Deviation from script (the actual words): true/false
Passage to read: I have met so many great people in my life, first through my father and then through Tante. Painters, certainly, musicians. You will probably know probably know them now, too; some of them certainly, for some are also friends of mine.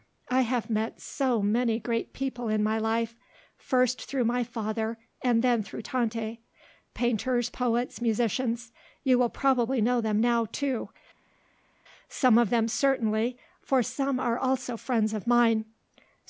true